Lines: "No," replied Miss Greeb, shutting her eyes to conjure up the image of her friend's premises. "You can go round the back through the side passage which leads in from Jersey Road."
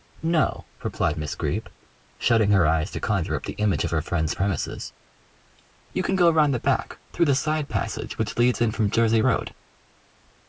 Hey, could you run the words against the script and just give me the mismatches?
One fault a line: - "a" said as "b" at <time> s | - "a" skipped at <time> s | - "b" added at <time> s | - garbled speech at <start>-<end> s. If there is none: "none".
none